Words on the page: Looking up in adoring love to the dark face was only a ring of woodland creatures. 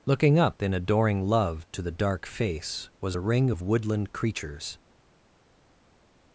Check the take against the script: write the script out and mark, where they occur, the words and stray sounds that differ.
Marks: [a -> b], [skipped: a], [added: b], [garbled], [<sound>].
Looking up in adoring love to the dark face was [skipped: only] a ring of woodland creatures.